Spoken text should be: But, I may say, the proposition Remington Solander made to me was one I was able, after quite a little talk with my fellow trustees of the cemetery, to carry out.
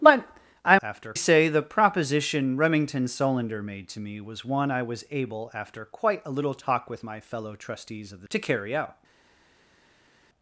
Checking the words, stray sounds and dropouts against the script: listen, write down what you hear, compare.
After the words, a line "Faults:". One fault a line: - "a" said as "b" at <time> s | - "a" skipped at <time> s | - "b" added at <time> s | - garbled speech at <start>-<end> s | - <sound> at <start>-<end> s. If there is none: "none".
But, I after say, the proposition Remington Solander made to me was one I was able, after quite a little talk with my fellow trustees of the to carry out.
Faults:
- "may" said as "after" at 0.8 s
- "cemetery" skipped at 8.3 s